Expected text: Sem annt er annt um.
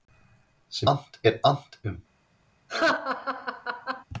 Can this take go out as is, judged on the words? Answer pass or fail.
pass